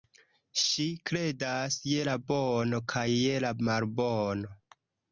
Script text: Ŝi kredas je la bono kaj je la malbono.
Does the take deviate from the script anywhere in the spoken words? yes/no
no